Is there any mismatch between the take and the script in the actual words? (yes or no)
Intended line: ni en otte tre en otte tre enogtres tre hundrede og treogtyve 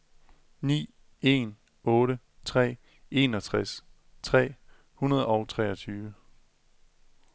yes